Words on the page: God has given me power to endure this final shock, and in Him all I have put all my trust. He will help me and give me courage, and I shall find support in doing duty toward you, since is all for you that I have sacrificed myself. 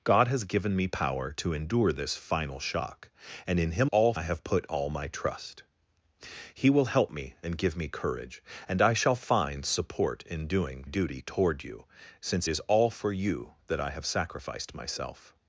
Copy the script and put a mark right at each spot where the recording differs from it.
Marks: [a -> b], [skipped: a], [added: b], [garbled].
God has given me power to endure this final shock, and in Him all I have put all my trust. He will help me and give me courage, and I shall find support in doing duty toward you, since is all for you that I have sacrificed myself.